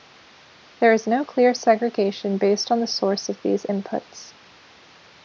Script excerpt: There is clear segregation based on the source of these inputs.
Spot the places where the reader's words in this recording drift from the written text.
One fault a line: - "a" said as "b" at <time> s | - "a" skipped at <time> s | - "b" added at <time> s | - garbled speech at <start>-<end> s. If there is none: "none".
- "no" added at 1.1 s